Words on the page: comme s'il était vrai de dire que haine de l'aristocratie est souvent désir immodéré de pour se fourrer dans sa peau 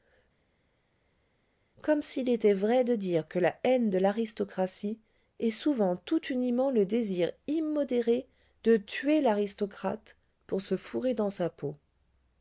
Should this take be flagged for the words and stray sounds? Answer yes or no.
yes